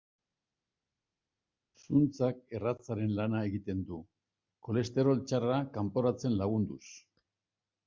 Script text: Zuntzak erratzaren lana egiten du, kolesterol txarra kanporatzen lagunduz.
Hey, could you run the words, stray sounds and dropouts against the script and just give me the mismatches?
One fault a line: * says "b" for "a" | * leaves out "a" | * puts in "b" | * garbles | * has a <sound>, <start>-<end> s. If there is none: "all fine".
all fine